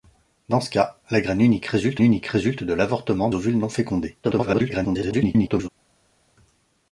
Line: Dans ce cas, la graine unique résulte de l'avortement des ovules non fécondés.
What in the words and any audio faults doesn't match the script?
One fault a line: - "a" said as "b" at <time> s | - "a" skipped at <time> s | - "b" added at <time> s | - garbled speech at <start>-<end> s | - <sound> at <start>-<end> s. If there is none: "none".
- "unique résulte" added at 2.0 s
- "des" skipped at 3.3 s
- garbled speech at 4.2-5.7 s